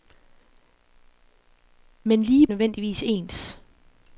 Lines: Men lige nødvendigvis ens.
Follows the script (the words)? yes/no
yes